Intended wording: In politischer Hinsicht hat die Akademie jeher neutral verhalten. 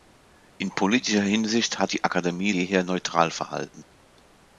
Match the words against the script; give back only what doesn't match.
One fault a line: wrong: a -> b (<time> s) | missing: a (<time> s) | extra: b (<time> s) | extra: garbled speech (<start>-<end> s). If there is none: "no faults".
no faults